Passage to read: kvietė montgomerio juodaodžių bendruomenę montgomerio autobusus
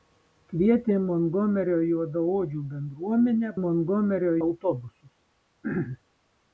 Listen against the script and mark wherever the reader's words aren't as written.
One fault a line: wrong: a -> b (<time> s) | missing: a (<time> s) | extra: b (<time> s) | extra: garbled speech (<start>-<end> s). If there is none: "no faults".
no faults